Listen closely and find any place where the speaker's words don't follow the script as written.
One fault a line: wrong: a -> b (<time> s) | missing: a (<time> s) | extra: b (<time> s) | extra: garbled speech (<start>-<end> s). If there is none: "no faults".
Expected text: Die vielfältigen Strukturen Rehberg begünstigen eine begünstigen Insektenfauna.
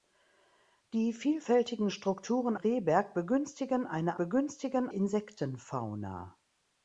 no faults